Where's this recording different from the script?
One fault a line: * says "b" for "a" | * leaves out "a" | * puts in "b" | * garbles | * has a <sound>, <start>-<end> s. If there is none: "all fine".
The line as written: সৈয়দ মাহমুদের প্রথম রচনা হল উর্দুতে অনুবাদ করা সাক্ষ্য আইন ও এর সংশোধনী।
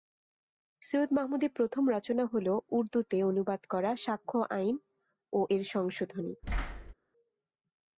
* has a thud, 6.4-6.9 s